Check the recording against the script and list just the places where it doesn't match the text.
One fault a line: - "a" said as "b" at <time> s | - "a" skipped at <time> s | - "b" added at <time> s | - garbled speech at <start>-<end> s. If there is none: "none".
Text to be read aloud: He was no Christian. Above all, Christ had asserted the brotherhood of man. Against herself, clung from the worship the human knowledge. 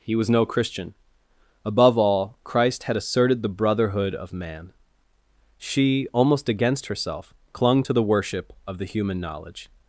- "She almost" added at 5.6 s
- "from" said as "to" at 7.8 s
- "of" added at 8.7 s